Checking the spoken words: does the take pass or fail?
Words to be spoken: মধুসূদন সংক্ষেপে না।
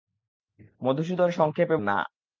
pass